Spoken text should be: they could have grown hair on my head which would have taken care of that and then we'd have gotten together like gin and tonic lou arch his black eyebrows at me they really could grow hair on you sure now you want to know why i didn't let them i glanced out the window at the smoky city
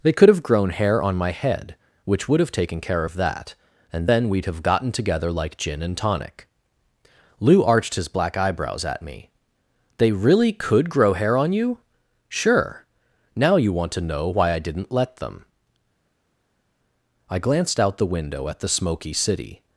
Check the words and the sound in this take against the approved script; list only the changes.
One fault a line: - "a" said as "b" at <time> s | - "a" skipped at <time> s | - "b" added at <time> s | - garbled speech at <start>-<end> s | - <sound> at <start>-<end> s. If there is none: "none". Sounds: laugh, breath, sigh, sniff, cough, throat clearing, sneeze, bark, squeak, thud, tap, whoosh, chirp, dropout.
- "arch" said as "arched" at 7.6 s